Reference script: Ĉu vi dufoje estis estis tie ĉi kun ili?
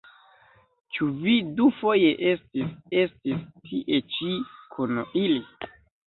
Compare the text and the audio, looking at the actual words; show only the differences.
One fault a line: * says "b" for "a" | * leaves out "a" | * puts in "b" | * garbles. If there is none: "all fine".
all fine